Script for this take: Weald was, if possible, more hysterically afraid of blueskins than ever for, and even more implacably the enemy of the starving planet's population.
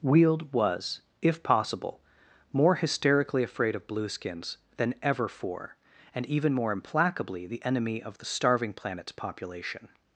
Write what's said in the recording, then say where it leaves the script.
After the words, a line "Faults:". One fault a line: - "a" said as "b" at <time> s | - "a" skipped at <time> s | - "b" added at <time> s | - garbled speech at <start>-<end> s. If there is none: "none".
Weald was, if possible, more hysterically afraid of blueskins than ever for, and even more implacably the enemy of the starving planet's population.
Faults:
none